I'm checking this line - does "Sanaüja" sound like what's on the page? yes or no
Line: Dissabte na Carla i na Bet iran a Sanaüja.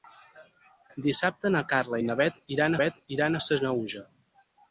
yes